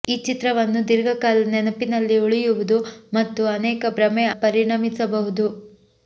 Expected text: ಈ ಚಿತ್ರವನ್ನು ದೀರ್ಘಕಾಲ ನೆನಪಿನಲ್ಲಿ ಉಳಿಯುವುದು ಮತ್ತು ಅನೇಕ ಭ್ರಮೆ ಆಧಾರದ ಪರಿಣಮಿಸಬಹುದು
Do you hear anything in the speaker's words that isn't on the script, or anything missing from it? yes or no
yes